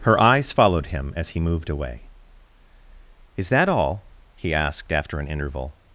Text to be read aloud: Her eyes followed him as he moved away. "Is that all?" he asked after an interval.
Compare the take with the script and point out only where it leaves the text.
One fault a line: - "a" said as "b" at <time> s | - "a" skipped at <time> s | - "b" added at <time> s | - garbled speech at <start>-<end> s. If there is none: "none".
none